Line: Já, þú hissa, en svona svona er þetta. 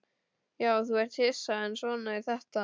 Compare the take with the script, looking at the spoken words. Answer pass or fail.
fail